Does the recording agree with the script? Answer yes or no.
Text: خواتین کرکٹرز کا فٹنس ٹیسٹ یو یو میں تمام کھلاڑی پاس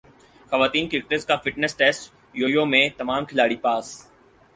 yes